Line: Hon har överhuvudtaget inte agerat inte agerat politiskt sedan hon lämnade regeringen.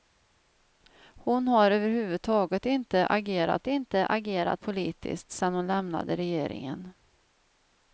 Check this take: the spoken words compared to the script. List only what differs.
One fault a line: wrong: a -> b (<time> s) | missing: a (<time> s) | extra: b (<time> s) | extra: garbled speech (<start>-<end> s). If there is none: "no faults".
no faults